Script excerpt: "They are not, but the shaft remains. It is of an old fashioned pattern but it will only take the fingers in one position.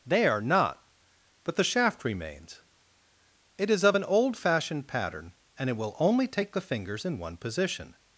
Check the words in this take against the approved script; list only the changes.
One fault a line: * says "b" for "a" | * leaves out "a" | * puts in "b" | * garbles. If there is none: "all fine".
* says "and" for "but"